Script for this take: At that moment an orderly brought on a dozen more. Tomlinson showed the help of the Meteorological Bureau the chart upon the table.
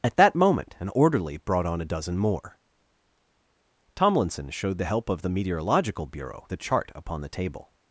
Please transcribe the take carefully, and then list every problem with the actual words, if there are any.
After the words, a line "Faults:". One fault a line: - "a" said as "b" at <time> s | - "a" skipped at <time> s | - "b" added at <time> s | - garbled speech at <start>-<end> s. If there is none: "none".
At that moment an orderly brought on a dozen more. Tomlinson showed the help of the Meteorological Bureau the chart upon the table.
Faults:
none